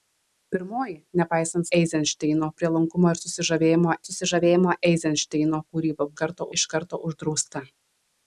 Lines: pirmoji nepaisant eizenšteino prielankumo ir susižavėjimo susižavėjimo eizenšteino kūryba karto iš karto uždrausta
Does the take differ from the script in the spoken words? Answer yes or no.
no